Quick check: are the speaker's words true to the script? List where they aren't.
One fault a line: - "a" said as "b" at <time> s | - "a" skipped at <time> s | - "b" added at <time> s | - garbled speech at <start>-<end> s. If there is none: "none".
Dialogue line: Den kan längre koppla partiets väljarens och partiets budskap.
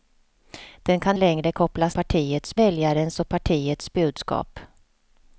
none